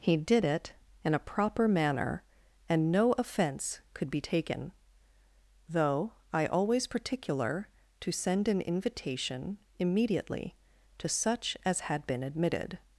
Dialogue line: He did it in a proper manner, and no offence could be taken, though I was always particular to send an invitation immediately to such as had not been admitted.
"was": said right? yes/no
no